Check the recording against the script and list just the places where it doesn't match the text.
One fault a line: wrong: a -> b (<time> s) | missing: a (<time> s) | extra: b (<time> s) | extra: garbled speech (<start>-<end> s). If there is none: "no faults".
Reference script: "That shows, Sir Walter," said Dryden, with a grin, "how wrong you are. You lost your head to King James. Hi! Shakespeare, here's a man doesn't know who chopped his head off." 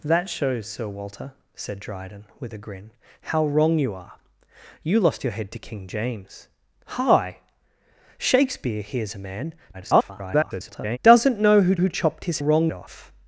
extra: garbled speech (9.7-11.0 s)
extra: who (11.7 s)
wrong: head -> wrong (12.4 s)